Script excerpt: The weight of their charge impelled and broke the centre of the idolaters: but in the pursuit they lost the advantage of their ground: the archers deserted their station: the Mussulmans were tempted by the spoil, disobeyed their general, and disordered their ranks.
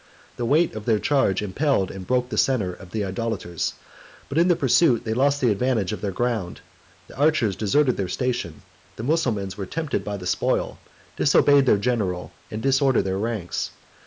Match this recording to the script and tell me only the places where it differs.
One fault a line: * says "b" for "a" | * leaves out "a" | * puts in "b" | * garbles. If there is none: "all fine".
all fine